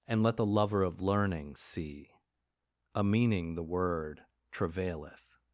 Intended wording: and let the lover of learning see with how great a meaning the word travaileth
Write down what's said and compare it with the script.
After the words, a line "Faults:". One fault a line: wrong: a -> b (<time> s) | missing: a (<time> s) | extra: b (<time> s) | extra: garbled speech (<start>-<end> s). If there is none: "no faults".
and let the lover of learning see a meaning the word travaileth
Faults:
missing: with how great (2.1 s)